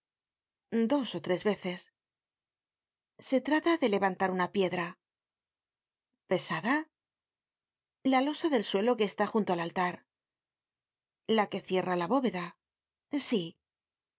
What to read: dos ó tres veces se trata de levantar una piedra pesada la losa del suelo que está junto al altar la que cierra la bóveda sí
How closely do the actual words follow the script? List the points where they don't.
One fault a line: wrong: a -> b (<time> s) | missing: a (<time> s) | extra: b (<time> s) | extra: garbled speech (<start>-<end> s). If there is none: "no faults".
no faults